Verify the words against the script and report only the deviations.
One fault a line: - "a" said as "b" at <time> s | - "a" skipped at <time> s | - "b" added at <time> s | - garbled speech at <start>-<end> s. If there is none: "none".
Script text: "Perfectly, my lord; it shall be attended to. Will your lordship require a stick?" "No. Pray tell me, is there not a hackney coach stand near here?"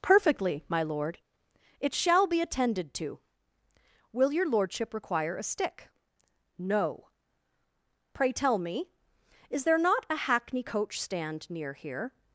none